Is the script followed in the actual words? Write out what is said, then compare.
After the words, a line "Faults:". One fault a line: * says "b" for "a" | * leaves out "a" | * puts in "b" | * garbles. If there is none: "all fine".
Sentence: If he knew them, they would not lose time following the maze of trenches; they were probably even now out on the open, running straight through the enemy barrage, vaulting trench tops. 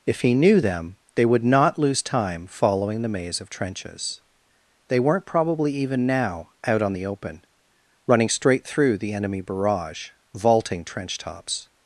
If he knew them, they would not lose time following the maze of trenches; they weren't probably even now out on the open, running straight through the enemy barrage, vaulting trench tops.
Faults:
* says "weren't" for "were"